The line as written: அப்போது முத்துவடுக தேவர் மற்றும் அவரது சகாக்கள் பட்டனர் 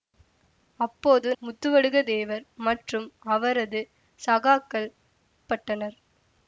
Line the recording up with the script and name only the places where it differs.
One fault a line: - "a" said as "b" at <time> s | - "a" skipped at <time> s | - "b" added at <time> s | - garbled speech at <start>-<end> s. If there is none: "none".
none